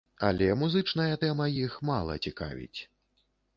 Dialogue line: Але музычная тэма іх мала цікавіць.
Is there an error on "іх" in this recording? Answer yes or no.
no